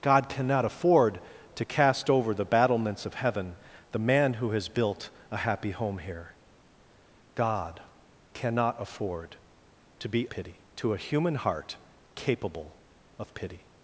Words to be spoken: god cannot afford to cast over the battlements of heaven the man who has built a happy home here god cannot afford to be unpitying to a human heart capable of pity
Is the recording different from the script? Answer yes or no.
yes